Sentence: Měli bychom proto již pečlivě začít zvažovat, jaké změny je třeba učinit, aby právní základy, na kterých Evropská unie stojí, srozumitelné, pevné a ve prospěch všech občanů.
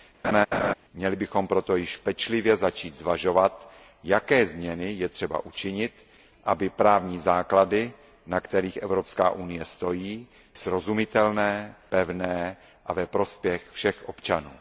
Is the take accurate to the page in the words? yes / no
yes